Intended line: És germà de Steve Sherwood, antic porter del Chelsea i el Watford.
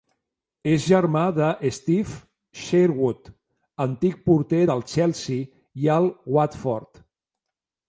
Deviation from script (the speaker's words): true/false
false